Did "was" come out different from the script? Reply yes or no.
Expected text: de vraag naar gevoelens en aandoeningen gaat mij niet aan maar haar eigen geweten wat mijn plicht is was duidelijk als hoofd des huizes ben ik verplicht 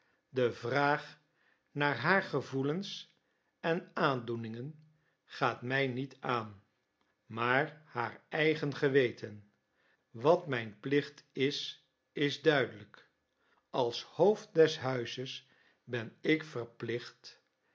yes